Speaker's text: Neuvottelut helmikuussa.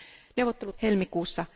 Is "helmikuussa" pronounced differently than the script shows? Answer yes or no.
no